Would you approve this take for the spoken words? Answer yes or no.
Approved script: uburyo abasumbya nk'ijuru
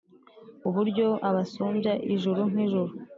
no